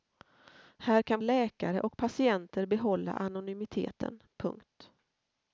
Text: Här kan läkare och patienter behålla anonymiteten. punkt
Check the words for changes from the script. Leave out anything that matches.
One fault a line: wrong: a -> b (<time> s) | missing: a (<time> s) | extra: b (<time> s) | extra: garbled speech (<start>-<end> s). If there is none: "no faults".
no faults